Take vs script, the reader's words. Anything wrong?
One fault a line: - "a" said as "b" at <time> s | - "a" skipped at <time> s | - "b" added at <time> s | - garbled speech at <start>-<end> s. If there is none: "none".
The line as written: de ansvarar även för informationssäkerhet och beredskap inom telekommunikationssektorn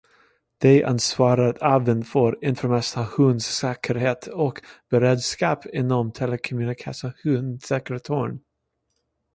none